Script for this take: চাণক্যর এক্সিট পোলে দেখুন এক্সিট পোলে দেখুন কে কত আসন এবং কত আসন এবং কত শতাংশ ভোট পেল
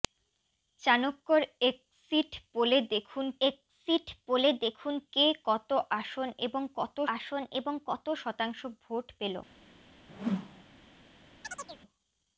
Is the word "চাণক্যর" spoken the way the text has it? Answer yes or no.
yes